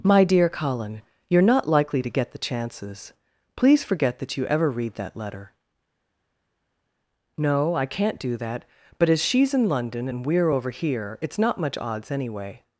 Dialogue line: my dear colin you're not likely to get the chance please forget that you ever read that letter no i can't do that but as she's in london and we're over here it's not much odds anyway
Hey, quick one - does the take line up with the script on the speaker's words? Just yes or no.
no